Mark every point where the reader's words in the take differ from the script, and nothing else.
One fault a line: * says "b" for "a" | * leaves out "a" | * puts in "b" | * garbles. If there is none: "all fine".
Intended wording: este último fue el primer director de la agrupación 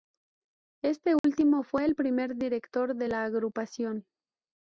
all fine